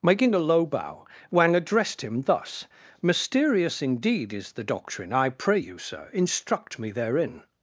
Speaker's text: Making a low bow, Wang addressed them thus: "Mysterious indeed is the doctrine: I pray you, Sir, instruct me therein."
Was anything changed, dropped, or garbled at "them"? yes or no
yes